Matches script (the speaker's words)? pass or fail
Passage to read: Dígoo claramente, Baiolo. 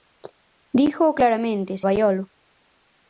pass